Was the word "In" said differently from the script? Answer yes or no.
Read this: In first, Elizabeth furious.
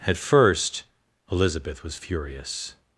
yes